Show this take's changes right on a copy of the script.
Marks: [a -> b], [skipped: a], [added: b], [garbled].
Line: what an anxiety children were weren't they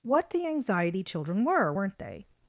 what [an -> the] anxiety children were weren't they